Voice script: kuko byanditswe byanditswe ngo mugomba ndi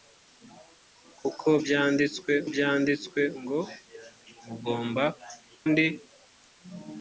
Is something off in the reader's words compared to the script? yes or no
no